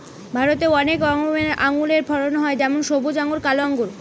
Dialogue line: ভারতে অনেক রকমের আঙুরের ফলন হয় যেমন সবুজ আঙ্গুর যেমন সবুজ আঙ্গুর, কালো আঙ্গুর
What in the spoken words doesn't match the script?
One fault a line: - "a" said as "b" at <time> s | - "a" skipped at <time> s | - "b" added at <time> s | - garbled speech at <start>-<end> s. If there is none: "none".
- "যেমন সবুজ আঙ্গুর" skipped at 3.4 s